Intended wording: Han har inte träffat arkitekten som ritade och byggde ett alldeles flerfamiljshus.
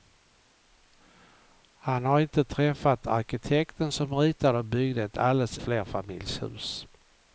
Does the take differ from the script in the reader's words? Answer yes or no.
no